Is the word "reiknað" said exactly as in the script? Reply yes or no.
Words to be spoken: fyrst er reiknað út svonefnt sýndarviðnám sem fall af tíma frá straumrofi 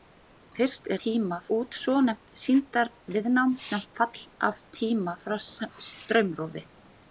no